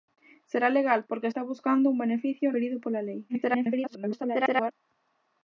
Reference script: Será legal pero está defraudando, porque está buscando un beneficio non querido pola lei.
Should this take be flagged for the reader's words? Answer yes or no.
yes